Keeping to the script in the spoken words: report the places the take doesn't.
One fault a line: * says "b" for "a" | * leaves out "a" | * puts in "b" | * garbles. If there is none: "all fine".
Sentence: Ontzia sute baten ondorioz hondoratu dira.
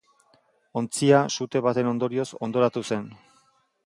* says "zen" for "dira"